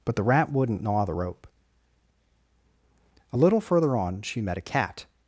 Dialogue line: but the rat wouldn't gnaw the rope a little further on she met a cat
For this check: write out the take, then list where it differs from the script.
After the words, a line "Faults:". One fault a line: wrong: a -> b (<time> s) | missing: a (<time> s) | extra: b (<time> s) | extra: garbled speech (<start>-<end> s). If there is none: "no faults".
but the rat wouldn't gnaw the rope a little further on she met a cat
Faults:
no faults